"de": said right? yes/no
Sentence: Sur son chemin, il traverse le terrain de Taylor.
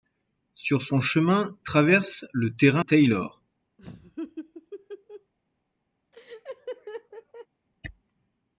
no